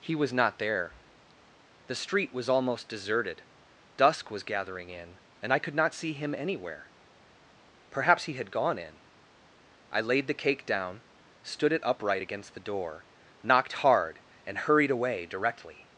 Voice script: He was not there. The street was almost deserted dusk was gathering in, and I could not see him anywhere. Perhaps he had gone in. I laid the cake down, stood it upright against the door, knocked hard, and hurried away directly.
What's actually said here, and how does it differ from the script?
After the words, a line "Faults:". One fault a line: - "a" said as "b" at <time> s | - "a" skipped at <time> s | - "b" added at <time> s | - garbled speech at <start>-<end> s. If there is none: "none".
He was not there. The street was almost deserted dusk was gathering in, and I could not see him anywhere. Perhaps he had gone in. I laid the cake down, stood it upright against the door, knocked hard, and hurried away directly.
Faults:
none